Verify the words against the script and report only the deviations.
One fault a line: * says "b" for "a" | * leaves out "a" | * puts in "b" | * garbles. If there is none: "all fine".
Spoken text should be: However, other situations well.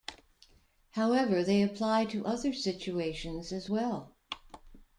* puts in "they apply to"
* puts in "as"